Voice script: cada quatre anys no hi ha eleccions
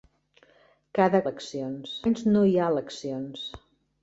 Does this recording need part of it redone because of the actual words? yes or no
yes